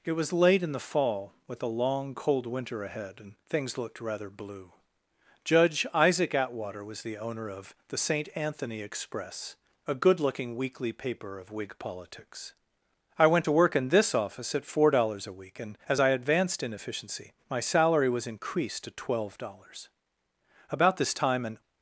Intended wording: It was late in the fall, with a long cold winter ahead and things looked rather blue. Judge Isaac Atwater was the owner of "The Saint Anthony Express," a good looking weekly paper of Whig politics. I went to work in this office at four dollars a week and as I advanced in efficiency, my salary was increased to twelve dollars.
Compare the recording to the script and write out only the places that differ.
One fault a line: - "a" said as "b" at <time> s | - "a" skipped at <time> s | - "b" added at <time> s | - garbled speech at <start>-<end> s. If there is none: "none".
- "About this time an" added at 20.7 s